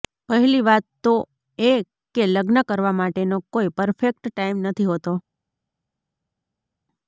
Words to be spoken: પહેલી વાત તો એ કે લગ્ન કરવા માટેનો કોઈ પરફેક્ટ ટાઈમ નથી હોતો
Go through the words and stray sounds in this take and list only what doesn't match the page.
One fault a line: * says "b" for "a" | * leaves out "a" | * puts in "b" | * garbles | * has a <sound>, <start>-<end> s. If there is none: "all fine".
all fine